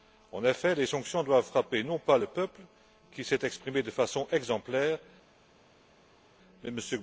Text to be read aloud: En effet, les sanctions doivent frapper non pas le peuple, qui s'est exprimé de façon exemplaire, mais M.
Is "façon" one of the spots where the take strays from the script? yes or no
no